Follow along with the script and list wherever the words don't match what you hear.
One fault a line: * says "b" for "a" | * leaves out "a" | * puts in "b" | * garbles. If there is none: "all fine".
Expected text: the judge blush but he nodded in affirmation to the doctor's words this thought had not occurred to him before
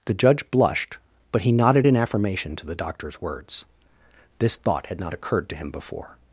* says "blushed" for "blush"